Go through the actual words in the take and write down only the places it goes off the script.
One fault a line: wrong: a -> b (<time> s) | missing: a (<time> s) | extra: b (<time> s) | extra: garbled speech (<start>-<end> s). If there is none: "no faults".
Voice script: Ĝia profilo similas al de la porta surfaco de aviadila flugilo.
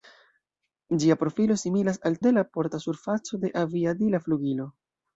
no faults